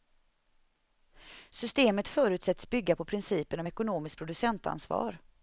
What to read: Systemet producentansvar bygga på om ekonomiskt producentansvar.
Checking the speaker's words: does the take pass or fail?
fail